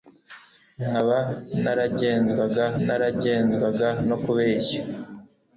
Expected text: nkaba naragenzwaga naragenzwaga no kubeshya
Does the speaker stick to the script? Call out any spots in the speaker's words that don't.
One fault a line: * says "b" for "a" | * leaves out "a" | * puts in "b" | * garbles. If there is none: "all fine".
all fine